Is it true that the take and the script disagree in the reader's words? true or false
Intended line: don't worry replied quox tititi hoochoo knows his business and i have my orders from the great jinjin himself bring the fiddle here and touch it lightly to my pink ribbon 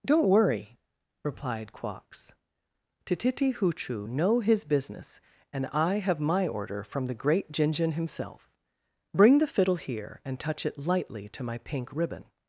true